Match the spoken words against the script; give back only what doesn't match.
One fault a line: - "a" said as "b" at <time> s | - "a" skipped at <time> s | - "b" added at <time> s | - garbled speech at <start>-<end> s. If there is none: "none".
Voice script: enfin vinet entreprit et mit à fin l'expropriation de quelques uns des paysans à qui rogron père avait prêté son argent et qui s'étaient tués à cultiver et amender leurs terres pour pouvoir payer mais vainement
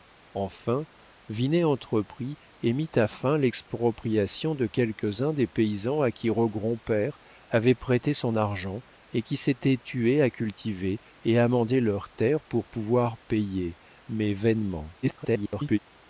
- garbled speech at 15.0-15.8 s